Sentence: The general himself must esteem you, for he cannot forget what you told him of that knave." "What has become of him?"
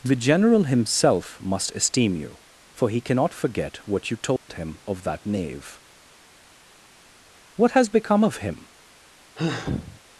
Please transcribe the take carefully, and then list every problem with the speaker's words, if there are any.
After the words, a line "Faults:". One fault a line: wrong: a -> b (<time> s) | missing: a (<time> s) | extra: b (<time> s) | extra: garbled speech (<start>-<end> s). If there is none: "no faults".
The general himself must esteem you, for he cannot forget what you told him of that knave." "What has become of him?"
Faults:
no faults